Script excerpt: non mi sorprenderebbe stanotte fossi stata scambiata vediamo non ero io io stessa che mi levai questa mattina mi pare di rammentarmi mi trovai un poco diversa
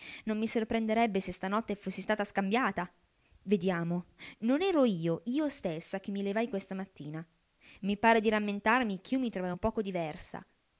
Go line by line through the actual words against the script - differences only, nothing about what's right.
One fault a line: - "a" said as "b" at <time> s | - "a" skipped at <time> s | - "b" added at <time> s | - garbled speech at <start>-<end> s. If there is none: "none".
- "se" added at 1.2 s
- "ch'io" added at 9.0 s